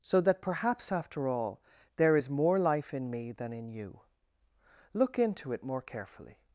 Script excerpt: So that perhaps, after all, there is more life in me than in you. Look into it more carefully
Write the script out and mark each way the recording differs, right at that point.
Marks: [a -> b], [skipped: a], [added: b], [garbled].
So that perhaps, after all, there is more life in me than in you. Look into it more carefully